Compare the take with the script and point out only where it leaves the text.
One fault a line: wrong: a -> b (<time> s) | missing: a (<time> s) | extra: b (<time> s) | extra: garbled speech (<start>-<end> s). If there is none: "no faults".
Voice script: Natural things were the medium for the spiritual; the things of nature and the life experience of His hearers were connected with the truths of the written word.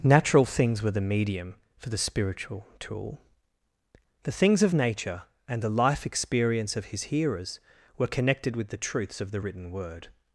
extra: tool (2.8 s)